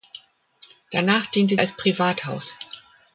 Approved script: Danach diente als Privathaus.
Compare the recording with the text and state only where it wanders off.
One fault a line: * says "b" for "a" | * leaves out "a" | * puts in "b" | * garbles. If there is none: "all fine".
all fine